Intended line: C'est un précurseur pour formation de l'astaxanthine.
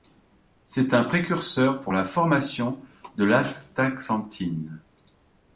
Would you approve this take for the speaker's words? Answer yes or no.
no